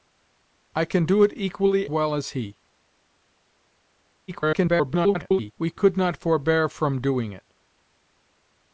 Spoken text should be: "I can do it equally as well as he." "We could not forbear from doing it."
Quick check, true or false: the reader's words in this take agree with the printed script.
false